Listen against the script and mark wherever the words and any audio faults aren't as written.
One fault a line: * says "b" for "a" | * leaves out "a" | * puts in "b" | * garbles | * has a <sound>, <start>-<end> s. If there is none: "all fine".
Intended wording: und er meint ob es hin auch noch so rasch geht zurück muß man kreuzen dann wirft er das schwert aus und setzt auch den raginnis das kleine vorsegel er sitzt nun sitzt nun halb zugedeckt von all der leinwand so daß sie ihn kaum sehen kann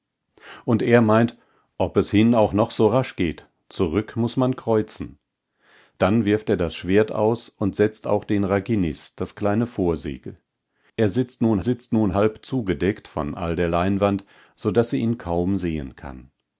all fine